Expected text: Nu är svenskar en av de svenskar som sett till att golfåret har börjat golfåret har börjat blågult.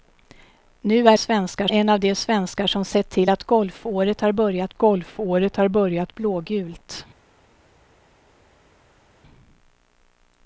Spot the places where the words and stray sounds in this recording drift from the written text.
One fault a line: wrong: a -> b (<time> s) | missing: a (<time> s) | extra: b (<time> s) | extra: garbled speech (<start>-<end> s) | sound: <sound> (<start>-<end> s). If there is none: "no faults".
no faults